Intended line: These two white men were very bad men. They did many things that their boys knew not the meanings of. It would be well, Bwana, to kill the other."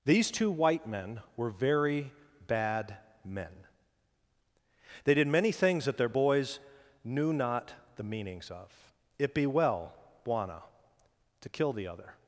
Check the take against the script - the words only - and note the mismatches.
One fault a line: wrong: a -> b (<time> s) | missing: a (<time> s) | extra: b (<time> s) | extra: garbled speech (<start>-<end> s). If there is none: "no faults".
missing: would (9.3 s)